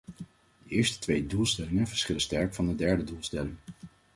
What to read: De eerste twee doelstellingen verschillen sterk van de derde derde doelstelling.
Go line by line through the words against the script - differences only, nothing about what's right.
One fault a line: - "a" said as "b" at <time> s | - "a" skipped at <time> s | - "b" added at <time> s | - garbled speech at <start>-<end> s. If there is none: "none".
- "derde" skipped at 3.0 s